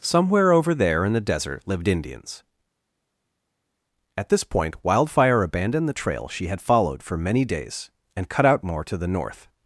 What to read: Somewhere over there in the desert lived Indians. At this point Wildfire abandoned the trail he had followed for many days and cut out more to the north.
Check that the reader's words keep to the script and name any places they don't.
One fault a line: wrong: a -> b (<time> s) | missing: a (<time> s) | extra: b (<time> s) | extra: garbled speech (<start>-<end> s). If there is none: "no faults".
wrong: he -> she (6.3 s)